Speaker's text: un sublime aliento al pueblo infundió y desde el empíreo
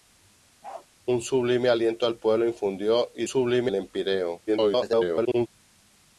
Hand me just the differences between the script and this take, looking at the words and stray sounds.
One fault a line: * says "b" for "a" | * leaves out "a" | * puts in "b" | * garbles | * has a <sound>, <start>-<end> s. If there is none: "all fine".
* has a bark, 0.6-0.9 s
* says "sublime" for "desde"
* garbles